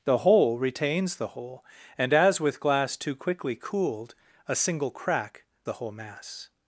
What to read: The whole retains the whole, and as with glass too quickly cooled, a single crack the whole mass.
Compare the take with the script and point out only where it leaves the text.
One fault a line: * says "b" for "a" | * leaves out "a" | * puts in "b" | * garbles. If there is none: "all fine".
all fine